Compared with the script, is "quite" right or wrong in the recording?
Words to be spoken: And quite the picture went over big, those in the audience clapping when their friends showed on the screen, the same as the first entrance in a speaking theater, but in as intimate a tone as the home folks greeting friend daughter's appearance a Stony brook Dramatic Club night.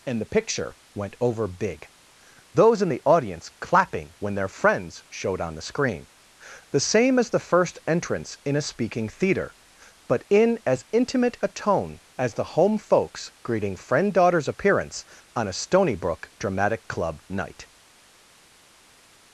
wrong